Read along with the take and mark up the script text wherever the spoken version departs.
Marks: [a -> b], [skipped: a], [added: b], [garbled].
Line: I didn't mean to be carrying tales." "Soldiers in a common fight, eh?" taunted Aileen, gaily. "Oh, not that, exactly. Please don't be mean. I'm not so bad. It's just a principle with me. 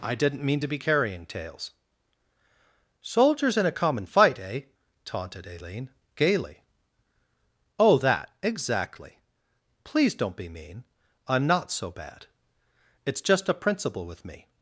I didn't mean to be carrying tales." "Soldiers in a common fight, eh?" taunted Aileen, gaily. "Oh, [skipped: not] that, exactly. Please don't be mean. I'm not so bad. It's just a principle with me.